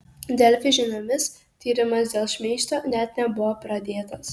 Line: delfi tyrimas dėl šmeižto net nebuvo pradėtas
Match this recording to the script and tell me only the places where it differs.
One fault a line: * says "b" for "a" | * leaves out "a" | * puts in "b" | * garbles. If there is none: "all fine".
* puts in "žiniomis"